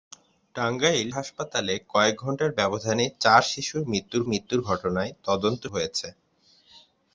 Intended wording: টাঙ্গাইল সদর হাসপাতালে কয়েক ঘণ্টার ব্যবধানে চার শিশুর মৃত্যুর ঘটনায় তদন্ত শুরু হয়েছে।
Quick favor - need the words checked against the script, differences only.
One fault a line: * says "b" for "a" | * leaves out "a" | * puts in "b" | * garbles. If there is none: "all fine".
* leaves out "সদর"
* puts in "মৃত্যুর"
* leaves out "শুরু"